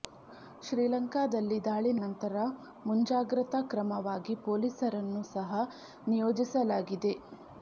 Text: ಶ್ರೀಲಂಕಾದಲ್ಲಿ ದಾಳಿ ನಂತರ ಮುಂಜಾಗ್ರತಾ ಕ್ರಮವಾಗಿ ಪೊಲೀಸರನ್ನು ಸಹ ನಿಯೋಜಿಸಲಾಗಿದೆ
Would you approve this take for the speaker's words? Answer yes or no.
yes